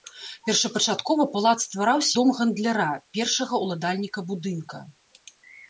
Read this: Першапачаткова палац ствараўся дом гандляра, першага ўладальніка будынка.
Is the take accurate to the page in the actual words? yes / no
yes